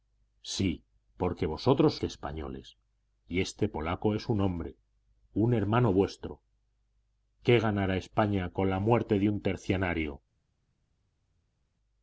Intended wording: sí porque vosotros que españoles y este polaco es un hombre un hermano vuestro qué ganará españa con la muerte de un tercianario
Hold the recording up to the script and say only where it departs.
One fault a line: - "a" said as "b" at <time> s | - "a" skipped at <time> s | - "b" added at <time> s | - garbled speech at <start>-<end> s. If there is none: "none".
none